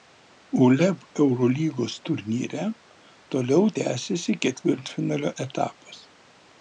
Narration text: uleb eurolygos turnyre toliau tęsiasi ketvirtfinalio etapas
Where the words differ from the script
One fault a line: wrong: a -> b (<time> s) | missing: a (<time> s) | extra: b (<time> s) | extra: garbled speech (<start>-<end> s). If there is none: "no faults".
no faults